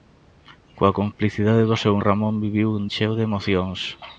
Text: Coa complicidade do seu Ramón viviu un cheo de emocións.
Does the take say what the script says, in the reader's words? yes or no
yes